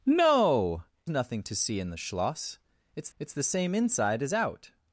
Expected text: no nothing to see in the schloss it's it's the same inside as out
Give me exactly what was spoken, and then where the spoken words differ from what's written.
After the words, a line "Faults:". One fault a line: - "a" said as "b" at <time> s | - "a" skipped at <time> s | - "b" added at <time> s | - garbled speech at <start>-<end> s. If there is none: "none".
no nothing to see in the schloss it's it's the same inside as out
Faults:
none